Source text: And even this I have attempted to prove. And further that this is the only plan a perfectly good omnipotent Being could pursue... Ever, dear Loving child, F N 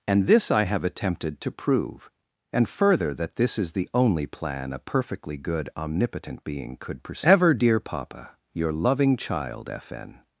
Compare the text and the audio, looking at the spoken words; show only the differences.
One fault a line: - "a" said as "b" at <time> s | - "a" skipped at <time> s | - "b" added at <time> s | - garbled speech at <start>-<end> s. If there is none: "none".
- "even" skipped at 0.3 s
- "Papa your" added at 7.8 s